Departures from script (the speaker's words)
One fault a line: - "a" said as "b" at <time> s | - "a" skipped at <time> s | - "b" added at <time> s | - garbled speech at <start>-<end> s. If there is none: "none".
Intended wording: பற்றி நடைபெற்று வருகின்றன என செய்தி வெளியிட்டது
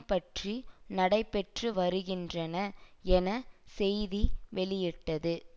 none